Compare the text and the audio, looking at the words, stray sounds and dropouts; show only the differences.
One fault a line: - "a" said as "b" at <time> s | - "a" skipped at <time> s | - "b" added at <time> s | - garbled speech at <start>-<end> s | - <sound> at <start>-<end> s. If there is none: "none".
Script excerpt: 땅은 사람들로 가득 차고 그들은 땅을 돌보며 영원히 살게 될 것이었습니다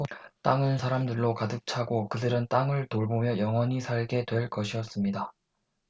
none